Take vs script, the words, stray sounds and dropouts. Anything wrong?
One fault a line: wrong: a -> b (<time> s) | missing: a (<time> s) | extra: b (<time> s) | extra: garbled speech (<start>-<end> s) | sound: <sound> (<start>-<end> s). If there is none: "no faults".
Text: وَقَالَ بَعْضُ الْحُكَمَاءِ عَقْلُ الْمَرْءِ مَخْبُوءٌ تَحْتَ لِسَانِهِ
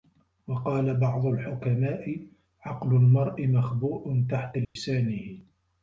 sound: dropout (4.6-4.8 s)